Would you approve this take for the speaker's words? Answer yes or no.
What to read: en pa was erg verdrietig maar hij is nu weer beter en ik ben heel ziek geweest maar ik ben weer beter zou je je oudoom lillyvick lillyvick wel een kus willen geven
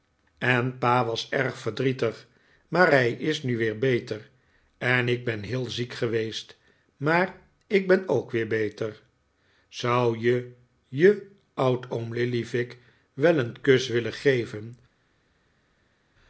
no